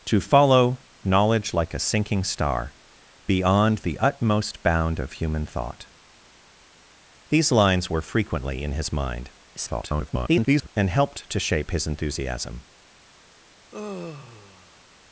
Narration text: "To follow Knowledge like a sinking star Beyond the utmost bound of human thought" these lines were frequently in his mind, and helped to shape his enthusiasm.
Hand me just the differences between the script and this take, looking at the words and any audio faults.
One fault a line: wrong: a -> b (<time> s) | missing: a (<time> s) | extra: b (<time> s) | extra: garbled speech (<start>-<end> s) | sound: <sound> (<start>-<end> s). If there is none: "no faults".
extra: garbled speech (9.6-10.7 s)
sound: sigh (13.7-14.8 s)